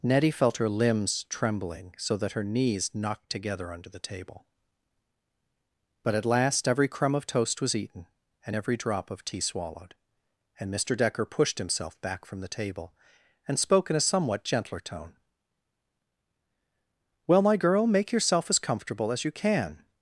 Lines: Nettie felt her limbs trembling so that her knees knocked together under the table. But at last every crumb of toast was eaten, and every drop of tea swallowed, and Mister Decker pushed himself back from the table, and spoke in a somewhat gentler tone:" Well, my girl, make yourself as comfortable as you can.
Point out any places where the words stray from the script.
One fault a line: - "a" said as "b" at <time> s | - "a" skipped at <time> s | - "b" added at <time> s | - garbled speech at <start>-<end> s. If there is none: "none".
none